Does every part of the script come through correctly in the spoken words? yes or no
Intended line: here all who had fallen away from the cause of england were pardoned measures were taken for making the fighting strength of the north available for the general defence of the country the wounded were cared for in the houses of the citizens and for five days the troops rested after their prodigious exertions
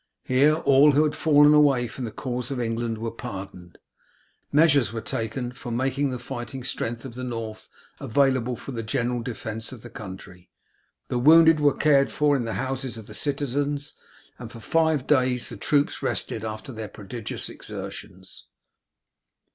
yes